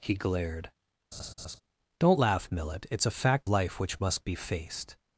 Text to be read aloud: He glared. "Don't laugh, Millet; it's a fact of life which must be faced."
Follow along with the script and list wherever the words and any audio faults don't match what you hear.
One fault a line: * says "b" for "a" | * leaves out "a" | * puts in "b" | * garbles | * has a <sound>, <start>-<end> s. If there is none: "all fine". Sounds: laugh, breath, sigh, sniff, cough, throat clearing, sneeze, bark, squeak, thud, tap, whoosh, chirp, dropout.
* has a laugh, 1.1-1.6 s
* leaves out "of"